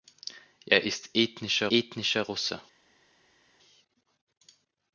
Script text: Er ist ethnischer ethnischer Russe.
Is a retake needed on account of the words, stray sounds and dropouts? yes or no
no